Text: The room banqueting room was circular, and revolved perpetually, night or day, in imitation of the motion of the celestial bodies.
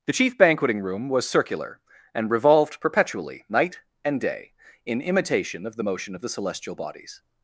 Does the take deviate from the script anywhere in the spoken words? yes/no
yes